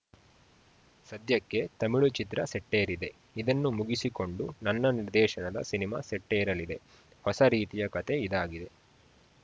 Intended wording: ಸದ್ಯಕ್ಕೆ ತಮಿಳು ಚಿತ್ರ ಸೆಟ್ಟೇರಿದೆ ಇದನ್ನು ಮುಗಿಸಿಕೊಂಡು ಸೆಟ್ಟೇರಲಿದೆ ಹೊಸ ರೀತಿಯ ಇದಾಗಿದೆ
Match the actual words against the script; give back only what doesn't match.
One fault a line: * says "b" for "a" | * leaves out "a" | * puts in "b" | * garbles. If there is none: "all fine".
* puts in "ನನ್ನ ನಿರ್ದೇಶನದ ಸಿನಿಮಾ"
* puts in "ಕತೆ"